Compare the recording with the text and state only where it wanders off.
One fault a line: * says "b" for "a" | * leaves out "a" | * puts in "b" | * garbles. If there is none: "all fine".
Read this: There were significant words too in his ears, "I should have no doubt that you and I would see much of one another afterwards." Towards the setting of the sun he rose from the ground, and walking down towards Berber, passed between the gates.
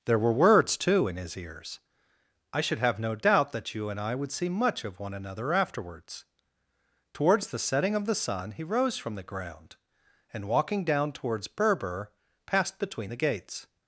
* leaves out "significant"